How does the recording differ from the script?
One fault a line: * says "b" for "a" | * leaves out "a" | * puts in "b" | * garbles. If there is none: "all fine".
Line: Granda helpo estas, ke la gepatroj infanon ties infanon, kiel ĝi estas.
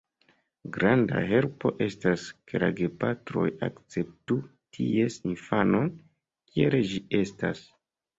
* says "akceptu" for "infanon"